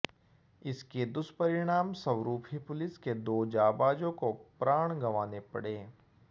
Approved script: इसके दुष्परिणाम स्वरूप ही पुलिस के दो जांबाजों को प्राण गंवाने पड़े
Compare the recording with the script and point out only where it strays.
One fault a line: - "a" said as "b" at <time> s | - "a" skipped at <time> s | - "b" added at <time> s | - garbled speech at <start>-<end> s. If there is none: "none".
none